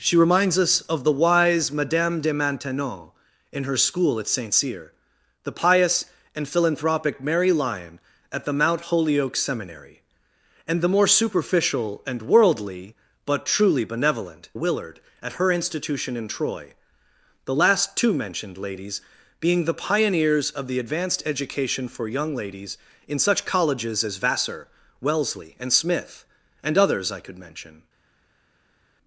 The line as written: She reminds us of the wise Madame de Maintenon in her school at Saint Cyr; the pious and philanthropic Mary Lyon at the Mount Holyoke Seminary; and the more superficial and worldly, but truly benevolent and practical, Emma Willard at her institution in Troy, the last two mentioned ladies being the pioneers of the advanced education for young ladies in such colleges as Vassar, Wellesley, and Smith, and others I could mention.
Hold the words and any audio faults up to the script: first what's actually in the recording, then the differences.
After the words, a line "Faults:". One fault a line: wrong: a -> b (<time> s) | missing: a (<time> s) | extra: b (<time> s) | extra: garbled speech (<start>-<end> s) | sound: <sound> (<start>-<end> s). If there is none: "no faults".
She reminds us of the wise Madame de Maintenon in her school at Saint Cyr; the pious and philanthropic Mary Lyon at the Mount Holyoke Seminary; and the more superficial and worldly, but truly benevolent Willard at her institution in Troy, the last two mentioned ladies being the pioneers of the advanced education for young ladies in such colleges as Vassar, Wellesley, and Smith, and others I could mention.
Faults:
missing: and practical Emma (14.5 s)